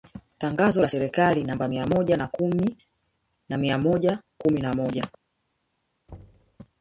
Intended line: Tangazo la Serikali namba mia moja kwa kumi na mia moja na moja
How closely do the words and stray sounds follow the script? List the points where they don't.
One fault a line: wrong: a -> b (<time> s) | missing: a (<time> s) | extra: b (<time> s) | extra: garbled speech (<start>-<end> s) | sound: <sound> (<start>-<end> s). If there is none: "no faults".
wrong: kwa -> na (2.2 s)
extra: kumi (4.4 s)
sound: thud (6.1-6.6 s)